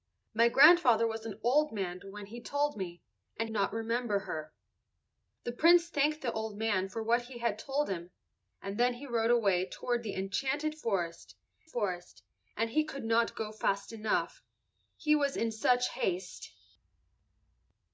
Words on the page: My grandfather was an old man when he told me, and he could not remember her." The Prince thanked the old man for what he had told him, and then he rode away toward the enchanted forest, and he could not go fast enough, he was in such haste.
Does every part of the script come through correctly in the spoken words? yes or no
no